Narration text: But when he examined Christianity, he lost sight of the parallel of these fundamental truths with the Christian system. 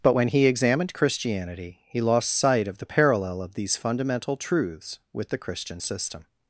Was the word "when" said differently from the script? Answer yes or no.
no